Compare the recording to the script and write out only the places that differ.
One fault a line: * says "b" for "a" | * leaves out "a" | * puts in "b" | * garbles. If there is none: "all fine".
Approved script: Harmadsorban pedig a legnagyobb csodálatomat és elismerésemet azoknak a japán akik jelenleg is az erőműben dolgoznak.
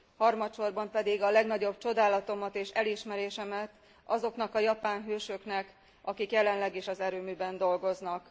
* puts in "hősöknek"